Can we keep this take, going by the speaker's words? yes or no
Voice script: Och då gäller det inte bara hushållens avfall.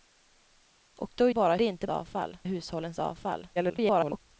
no